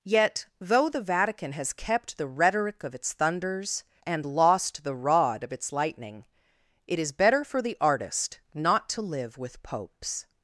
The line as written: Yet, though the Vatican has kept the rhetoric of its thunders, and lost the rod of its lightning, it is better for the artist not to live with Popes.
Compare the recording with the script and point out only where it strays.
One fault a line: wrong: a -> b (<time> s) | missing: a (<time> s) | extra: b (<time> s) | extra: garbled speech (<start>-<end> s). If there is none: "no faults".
no faults